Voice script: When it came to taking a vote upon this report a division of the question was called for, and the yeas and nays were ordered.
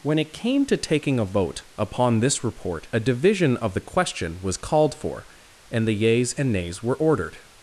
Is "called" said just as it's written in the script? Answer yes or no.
yes